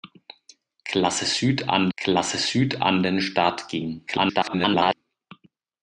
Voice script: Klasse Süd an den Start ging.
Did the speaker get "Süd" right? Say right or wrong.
right